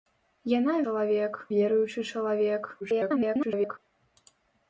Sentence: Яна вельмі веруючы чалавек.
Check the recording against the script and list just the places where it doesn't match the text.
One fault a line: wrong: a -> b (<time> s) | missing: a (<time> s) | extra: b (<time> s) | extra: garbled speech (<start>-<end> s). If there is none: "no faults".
wrong: вельмі -> чалавек (0.9 s)
extra: garbled speech (2.8-3.8 s)